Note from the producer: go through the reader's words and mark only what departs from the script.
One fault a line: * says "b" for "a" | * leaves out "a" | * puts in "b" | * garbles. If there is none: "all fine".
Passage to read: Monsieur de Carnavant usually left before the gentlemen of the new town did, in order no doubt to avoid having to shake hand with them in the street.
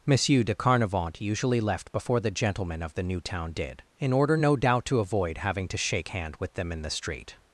all fine